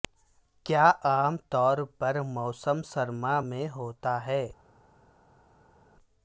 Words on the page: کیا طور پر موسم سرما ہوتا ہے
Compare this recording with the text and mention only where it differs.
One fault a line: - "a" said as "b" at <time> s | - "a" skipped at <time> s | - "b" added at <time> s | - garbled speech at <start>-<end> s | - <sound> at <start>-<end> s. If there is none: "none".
- "عام" added at 1.0 s
- "میں" added at 3.4 s